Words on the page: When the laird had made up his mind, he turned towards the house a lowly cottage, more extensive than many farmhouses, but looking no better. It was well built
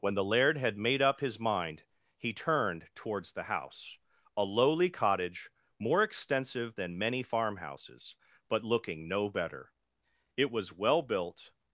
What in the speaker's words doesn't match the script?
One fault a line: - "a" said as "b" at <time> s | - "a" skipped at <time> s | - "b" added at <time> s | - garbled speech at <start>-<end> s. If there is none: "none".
none